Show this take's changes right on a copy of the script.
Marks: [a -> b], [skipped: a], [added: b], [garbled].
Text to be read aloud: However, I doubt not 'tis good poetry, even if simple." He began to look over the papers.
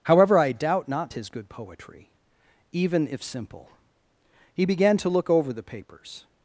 However, I doubt not 'tis good poetry, even if simple." He began to look over the papers.